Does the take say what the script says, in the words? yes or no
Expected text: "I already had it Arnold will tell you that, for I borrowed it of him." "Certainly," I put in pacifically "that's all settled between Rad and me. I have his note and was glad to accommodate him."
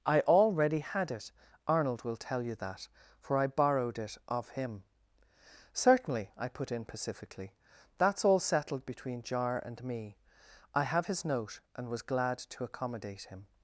no